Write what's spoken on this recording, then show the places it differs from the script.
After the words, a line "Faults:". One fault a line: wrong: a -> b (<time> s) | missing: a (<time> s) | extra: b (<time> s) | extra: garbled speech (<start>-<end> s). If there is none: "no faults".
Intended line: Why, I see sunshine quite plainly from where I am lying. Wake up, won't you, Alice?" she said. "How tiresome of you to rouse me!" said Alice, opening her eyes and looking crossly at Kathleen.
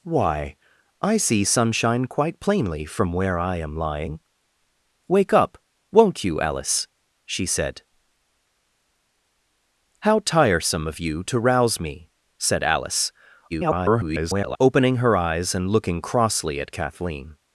Why, I see sunshine quite plainly from where I am lying. Wake up, won't you, Alice?" she said. "How tiresome of you to rouse me!" said Alice, [garbled] opening her eyes and looking crossly at Kathleen.
Faults:
extra: garbled speech (13.5-14.6 s)